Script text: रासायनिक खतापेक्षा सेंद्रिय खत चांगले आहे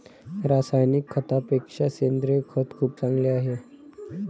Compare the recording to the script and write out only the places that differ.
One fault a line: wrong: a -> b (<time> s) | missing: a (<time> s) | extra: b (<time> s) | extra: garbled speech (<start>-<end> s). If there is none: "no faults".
extra: खूप (2.8 s)